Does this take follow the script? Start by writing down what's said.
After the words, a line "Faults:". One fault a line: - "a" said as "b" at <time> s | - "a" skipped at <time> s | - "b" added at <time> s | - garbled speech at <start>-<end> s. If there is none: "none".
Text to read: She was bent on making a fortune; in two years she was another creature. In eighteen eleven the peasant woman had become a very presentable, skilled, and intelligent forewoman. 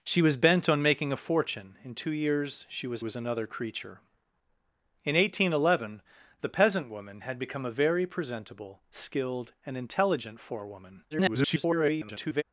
She was bent on making a fortune; in two years she was was another creature. In eighteen eleven the peasant woman had become a very presentable, skilled, and intelligent forewoman. [garbled]
Faults:
- "was" added at 3.0 s
- garbled speech at 11.1-12.4 s